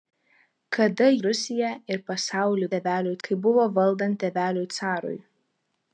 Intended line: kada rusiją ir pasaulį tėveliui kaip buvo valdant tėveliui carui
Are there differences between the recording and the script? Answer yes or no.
no